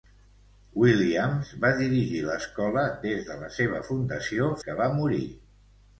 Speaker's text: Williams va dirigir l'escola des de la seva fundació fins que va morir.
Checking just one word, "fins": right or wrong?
wrong